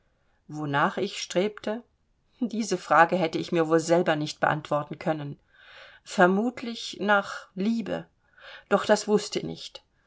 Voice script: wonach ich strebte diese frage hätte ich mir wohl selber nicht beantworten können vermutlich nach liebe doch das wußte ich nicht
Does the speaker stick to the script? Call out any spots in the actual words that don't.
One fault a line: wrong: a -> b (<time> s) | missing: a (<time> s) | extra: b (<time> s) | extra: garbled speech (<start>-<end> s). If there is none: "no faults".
missing: ich (9.4 s)